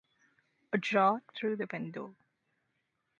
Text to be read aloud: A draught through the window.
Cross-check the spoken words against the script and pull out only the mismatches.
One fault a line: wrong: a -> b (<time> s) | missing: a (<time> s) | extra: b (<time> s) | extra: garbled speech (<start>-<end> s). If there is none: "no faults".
no faults